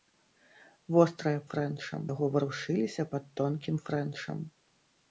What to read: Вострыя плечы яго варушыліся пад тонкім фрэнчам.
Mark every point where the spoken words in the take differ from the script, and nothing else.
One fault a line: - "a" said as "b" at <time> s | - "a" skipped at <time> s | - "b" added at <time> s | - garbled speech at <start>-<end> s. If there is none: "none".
- "плечы" said as "фрэнчам" at 1.5 s